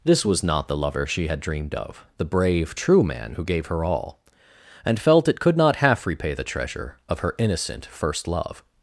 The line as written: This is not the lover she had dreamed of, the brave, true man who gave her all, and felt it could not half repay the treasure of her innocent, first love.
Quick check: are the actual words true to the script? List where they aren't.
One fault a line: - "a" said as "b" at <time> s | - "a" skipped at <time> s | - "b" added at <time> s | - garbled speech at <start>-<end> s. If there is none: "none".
- "is" said as "was" at 0.2 s